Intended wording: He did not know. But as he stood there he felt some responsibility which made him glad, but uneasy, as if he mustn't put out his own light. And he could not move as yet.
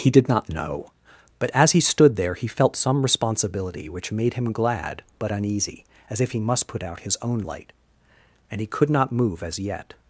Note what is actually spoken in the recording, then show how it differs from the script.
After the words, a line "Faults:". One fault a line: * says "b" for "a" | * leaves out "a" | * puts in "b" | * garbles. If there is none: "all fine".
He did not know. But as he stood there he felt some responsibility which made him glad, but uneasy, as if he must put out his own light. And he could not move as yet.
Faults:
* says "must" for "mustn't"